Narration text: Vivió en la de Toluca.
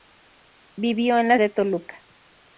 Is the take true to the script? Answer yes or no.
yes